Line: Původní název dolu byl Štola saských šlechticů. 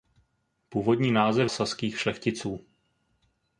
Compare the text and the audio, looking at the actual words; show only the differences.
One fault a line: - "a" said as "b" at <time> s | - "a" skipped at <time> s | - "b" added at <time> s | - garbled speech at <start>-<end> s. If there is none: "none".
- "dolu byl Štola" skipped at 1.5 s